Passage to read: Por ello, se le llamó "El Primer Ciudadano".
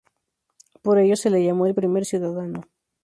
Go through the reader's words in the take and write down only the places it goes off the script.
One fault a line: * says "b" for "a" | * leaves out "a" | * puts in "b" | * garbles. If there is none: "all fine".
all fine